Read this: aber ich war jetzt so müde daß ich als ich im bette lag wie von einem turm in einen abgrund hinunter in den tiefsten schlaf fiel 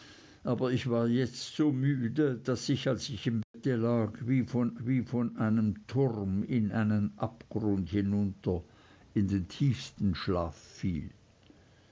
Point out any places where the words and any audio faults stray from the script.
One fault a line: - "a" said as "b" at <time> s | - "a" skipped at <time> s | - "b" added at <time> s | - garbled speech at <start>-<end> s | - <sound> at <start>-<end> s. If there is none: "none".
- dropout at 3.4-3.5 s
- "wie von" added at 4.8 s